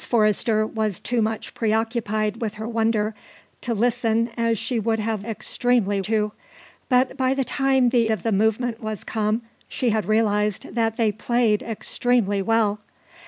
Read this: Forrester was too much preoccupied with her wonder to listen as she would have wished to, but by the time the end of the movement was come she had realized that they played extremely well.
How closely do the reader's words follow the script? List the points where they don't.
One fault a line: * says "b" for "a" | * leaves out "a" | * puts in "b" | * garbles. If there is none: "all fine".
* says "extremely" for "wished"
* leaves out "end"